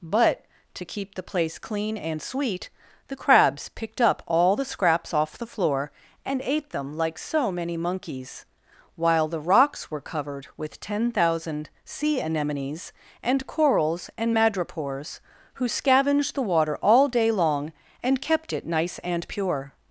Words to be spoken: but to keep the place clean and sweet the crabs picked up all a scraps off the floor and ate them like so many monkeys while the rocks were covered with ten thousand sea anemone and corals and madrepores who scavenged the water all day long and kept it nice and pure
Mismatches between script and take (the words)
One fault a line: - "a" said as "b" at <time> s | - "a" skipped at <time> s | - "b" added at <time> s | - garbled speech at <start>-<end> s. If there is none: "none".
- "a" said as "the" at 4.5 s
- "anemone" said as "anemones" at 12.2 s